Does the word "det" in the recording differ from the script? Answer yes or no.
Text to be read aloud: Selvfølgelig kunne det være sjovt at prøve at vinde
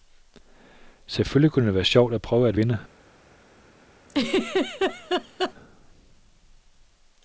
no